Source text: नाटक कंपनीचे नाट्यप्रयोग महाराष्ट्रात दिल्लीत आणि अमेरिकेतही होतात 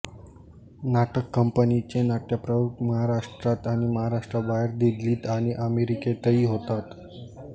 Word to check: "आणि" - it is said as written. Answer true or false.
true